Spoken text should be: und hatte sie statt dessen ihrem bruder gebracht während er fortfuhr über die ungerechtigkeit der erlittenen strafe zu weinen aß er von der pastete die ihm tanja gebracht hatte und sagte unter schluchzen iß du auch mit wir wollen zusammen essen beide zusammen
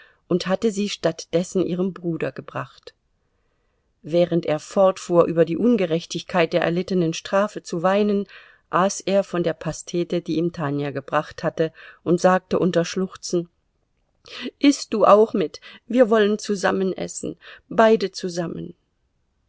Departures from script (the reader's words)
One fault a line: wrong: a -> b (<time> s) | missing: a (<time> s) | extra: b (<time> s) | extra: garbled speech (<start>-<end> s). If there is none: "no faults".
no faults